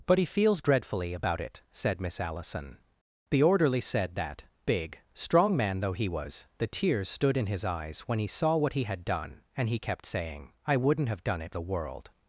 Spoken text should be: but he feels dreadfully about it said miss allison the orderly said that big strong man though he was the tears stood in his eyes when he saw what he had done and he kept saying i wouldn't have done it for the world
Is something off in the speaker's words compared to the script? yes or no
yes